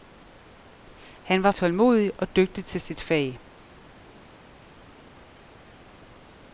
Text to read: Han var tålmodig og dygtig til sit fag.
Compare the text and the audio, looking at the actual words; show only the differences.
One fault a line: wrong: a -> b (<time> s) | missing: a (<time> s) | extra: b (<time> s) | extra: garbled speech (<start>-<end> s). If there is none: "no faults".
no faults